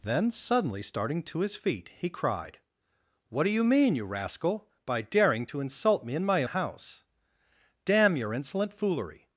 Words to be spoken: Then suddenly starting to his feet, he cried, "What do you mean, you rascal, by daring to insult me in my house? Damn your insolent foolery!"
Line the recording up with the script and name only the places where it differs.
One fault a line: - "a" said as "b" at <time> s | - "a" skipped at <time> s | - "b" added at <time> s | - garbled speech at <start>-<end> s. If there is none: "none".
none